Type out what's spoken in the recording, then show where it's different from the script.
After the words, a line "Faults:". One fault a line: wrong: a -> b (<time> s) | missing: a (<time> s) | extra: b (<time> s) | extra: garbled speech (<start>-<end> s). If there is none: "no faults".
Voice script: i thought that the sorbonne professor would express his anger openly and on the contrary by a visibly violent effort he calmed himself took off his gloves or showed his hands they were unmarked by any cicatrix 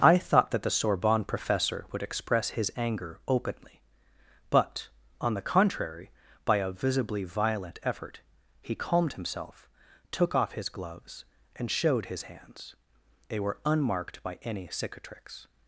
i thought that the sorbonne professor would express his anger openly but on the contrary by a visibly violent effort he calmed himself took off his gloves and showed his hands they were unmarked by any cicatrix
Faults:
wrong: and -> but (4.5 s)
wrong: or -> and (11.6 s)